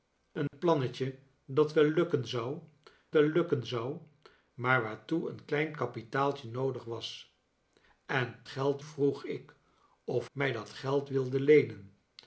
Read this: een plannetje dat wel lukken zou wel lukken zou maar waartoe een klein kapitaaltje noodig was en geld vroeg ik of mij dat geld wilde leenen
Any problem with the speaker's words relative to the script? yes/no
no